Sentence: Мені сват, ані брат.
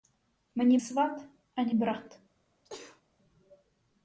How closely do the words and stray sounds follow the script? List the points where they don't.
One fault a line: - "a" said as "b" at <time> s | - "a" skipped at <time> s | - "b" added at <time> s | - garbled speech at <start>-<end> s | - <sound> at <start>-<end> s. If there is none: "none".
- sneeze at 2.6-3.0 s